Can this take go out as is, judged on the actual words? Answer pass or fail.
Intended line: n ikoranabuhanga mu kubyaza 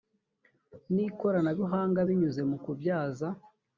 fail